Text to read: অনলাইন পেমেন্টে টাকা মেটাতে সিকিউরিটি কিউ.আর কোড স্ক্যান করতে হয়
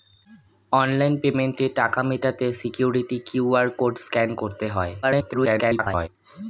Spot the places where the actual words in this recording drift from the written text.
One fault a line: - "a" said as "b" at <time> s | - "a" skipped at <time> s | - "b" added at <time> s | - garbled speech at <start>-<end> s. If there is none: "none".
- garbled speech at 5.0-6.1 s